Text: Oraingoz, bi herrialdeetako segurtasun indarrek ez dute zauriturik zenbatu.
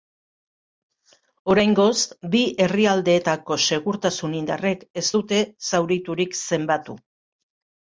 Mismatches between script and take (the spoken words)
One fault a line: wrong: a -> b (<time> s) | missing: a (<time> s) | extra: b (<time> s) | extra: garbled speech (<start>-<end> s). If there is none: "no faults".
no faults